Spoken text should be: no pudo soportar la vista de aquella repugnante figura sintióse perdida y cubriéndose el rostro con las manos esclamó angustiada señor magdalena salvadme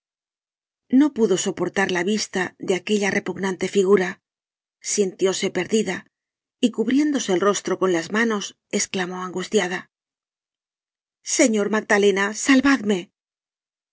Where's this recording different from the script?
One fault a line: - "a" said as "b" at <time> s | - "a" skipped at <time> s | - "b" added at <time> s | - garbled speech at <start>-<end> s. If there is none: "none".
none